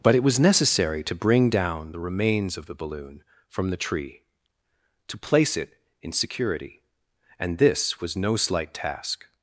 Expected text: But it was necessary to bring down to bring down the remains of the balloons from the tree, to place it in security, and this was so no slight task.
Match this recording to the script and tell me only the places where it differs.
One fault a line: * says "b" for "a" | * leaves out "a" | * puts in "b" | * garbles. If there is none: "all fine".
* leaves out "to bring down"
* says "balloon" for "balloons"
* leaves out "so"